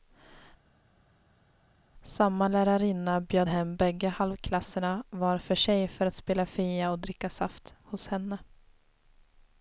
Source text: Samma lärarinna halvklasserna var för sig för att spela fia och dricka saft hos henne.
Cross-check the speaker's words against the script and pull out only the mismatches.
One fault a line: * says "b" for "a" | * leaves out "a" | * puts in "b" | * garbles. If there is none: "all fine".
* puts in "bjöd hem bägge"